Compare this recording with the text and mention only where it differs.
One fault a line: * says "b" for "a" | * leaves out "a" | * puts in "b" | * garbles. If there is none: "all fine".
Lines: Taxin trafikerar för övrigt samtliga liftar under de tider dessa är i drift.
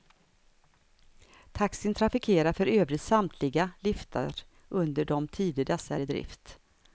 all fine